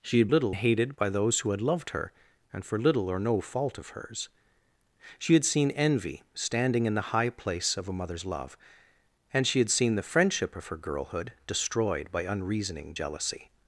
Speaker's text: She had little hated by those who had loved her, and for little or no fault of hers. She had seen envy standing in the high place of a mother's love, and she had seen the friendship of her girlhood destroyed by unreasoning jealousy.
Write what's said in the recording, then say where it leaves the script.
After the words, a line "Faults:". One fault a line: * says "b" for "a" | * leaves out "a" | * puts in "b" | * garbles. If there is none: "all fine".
She had little hated by those who had loved her, and for little or no fault of hers. She had seen envy standing in the high place of a mother's love, and she had seen the friendship of her girlhood destroyed by unreasoning jealousy.
Faults:
all fine